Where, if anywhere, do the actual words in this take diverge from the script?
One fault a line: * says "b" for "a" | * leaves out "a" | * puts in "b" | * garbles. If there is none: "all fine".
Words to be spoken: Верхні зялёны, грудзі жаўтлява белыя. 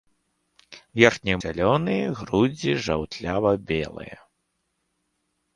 all fine